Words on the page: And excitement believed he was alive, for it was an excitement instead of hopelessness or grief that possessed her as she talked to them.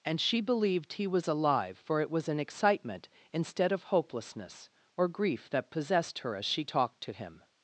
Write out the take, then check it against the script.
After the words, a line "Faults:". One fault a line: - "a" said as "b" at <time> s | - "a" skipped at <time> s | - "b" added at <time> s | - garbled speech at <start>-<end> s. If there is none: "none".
And she believed he was alive, for it was an excitement instead of hopelessness or grief that possessed her as she talked to him.
Faults:
- "excitement" said as "she" at 0.2 s
- "them" said as "him" at 7.1 s